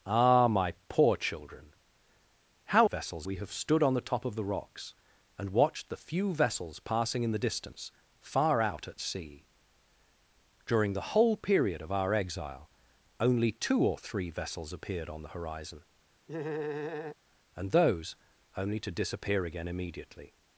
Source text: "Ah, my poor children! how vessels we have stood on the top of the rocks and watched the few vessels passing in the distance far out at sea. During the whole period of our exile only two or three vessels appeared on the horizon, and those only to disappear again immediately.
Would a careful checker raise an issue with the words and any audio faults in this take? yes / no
yes